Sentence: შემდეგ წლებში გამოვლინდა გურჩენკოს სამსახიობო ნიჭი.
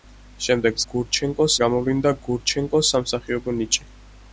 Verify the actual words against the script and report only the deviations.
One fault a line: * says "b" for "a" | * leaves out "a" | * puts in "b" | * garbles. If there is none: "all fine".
* says "გურჩენკოს" for "წლებში"